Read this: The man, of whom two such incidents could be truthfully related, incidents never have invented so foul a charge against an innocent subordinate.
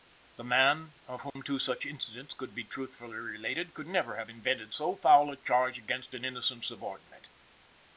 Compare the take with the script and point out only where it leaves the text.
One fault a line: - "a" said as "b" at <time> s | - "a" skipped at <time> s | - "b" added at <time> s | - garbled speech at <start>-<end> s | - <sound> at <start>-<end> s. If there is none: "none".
- dropout at 1.3-1.4 s
- "incidents" said as "could" at 3.8 s